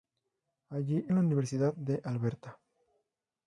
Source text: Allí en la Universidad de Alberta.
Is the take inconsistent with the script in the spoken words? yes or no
no